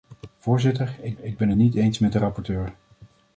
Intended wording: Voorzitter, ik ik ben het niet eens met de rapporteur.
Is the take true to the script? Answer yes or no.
yes